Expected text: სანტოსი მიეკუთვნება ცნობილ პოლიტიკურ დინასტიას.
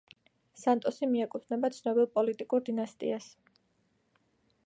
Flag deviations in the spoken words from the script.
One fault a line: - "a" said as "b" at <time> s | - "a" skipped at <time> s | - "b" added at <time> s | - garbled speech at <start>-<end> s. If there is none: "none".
none